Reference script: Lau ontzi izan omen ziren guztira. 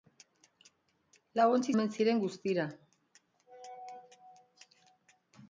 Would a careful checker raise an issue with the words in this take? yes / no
yes